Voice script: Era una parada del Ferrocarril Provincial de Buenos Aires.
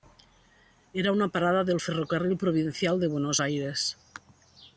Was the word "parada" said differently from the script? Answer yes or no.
no